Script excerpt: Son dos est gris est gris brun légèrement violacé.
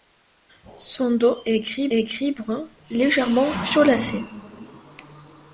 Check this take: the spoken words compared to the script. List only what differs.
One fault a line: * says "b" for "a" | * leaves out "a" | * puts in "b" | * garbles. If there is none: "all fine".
all fine